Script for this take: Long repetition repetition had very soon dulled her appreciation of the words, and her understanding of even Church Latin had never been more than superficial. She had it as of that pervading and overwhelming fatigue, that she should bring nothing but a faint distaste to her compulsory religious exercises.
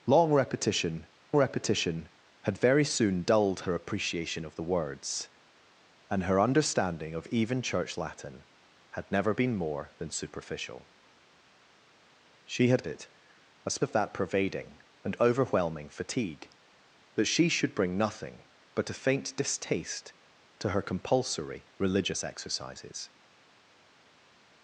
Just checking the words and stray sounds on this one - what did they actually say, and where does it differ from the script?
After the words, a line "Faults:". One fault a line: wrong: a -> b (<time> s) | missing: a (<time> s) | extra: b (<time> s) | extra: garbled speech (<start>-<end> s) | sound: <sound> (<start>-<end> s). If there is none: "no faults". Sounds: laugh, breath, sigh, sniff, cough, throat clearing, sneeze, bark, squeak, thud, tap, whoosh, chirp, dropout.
Long repetition repetition had very soon dulled her appreciation of the words, and her understanding of even Church Latin had never been more than superficial. She had it as of that pervading and overwhelming fatigue, that she should bring nothing but a faint distaste to her compulsory religious exercises.
Faults:
no faults